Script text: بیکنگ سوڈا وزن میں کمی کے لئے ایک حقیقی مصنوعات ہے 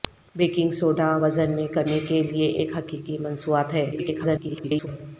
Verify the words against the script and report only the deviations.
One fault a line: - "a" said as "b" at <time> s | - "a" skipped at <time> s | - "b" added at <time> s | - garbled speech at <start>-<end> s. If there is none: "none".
- garbled speech at 3.9-4.9 s